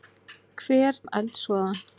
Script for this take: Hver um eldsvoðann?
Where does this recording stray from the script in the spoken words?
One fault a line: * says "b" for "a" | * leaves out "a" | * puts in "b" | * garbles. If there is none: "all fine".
all fine